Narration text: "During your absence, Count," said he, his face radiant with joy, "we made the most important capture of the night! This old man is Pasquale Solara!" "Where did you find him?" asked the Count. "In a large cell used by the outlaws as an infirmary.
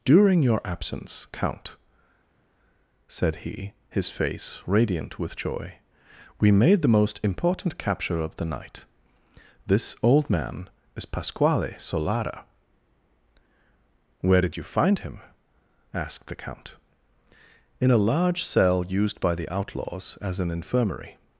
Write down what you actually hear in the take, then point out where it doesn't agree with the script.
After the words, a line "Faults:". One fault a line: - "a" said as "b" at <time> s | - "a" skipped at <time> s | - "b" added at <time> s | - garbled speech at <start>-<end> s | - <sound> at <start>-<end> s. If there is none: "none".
"During your absence, Count," said he, his face radiant with joy, "we made the most important capture of the night! This old man is Pasquale Solara!" "Where did you find him?" asked the Count. "In a large cell used by the outlaws as an infirmary.
Faults:
none